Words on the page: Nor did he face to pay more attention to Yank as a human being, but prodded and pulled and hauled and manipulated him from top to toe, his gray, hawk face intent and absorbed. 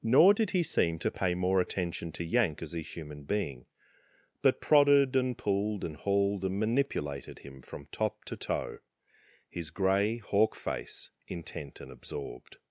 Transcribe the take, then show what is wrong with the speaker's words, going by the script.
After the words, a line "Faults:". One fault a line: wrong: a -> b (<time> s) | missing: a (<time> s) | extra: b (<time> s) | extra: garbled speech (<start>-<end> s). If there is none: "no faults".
Nor did he seem to pay more attention to Yank as a human being, but prodded and pulled and hauled and manipulated him from top to toe, his gray, hawk face intent and absorbed.
Faults:
wrong: face -> seem (0.6 s)